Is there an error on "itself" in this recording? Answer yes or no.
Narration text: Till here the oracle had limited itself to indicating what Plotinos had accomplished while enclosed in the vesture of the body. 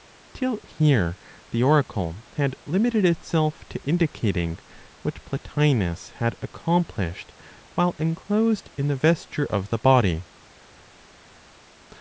no